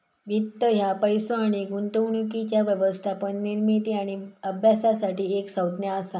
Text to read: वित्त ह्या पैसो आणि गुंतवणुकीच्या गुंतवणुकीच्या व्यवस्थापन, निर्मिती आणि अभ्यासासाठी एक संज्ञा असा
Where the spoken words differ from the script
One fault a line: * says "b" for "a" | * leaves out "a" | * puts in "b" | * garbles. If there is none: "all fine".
* leaves out "गुंतवणुकीच्या"